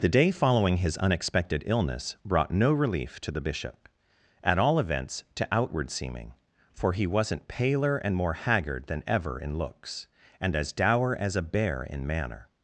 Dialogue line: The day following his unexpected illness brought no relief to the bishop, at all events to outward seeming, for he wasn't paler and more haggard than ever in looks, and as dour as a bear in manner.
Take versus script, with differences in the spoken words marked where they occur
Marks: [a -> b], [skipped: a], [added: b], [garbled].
The day following his unexpected illness brought no relief to the bishop, at all events to outward seeming, for he wasn't paler and more haggard than ever in looks, and as dour as a bear in manner.